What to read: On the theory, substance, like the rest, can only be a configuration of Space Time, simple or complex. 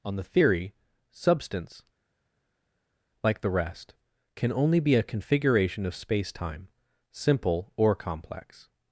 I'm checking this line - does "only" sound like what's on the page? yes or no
yes